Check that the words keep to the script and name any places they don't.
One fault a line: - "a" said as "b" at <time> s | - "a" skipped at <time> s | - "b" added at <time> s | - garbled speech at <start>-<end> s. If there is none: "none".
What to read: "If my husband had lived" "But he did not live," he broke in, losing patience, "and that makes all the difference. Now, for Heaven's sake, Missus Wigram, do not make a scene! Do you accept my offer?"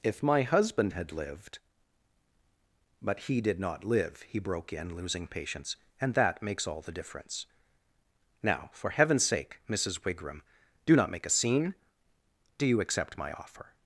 none